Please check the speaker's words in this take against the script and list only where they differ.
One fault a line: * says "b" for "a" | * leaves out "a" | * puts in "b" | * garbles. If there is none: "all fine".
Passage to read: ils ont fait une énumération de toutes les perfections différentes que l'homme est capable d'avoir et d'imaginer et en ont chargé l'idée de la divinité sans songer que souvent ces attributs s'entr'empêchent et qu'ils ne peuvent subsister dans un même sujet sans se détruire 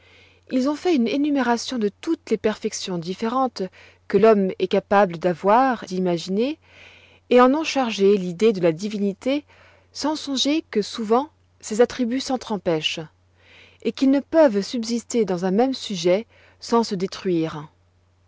* leaves out "et"